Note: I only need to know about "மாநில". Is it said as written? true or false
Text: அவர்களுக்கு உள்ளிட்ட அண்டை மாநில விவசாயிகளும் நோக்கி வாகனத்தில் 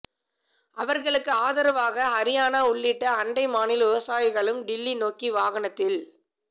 true